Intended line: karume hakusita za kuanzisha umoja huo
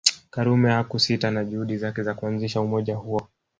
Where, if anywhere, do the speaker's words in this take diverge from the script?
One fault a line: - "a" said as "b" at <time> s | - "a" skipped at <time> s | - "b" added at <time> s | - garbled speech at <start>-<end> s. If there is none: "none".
- "na juhudi zake" added at 1.3 s